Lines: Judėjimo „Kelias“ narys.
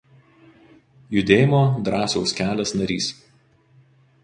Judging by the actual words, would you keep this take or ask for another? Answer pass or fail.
fail